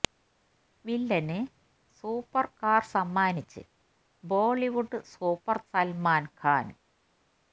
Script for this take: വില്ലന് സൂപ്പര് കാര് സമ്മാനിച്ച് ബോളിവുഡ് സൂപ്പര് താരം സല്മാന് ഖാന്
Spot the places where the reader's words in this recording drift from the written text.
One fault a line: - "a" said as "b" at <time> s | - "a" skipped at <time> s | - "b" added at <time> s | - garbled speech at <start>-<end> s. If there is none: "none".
- "താരം" skipped at 5.6 s